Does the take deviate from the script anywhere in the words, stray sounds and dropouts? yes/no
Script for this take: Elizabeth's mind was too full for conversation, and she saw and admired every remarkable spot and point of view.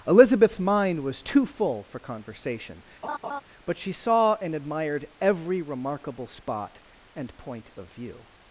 yes